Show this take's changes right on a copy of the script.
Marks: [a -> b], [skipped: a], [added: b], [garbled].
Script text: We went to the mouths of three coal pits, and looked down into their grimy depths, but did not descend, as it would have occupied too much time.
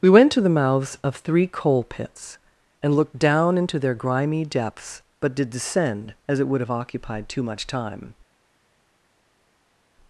We went to the mouths of three coal pits, and looked down into their grimy depths, but did [skipped: not] descend, as it would have occupied too much time.